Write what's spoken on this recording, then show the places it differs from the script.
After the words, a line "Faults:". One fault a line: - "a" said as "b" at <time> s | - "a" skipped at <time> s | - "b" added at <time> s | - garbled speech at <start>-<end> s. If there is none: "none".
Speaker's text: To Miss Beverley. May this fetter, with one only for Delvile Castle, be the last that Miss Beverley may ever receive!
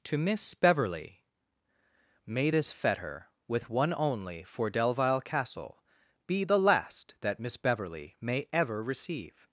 To Miss Beverley. May this fetter, with one only for Delvile Castle, be the last that Miss Beverley may ever receive!
Faults:
none